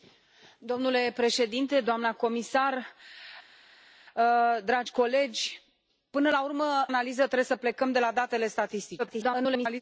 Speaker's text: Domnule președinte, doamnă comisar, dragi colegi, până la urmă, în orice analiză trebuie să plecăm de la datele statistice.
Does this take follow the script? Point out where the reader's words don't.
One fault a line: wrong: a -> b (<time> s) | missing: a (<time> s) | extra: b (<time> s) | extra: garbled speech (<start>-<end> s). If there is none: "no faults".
missing: în orice (6.9 s)
extra: garbled speech (9.0-9.8 s)